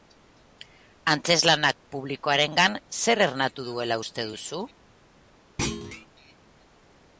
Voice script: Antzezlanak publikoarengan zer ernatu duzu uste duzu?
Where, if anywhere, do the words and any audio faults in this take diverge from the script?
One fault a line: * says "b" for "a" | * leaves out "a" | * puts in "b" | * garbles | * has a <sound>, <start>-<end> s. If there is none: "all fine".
* says "duela" for "duzu"
* has a thud, 5.6-6.1 s